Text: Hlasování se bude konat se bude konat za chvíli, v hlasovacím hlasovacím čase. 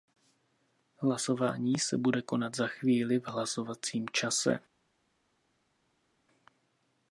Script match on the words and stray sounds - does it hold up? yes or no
no